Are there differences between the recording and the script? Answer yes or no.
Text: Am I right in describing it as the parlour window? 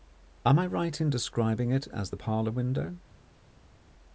no